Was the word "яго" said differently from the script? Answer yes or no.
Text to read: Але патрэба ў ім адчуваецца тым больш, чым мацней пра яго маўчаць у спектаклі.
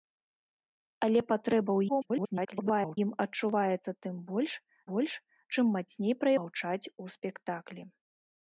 yes